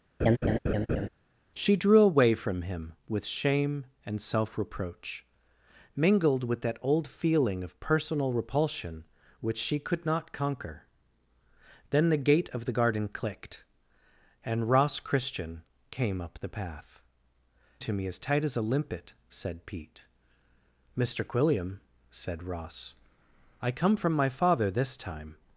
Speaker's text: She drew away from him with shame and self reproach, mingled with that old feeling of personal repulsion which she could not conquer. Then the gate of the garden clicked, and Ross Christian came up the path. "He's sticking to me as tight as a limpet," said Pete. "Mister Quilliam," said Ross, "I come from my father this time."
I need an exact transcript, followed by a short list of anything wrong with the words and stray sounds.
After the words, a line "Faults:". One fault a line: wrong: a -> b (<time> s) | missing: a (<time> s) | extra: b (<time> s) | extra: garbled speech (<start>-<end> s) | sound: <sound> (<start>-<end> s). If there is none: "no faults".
She drew away from him with shame and self reproach, mingled with that old feeling of personal repulsion which she could not conquer. Then the gate of the garden clicked, and Ross Christian came up the path. "To me as tight as a limpet," said Pete. "Mister Quilliam," said Ross, "I come from my father this time."
Faults:
sound: laugh (0.2-1.1 s)
missing: He's sticking (17.0 s)